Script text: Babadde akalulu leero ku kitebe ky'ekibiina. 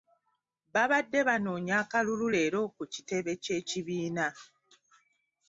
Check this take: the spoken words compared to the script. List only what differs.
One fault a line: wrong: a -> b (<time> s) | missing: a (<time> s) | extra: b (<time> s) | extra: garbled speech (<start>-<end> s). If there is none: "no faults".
extra: banoonya (1.3 s)